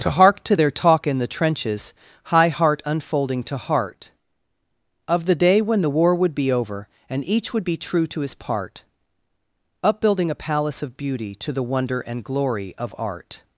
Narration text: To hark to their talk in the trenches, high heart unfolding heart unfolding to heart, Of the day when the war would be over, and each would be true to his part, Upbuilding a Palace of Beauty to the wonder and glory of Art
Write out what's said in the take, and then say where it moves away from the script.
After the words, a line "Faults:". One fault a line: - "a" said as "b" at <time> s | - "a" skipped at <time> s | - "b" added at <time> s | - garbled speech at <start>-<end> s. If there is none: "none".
To hark to their talk in the trenches, high heart unfolding to heart, Of the day when the war would be over, and each would be true to his part, Upbuilding a Palace of Beauty to the wonder and glory of Art
Faults:
- "heart unfolding" skipped at 3.4 s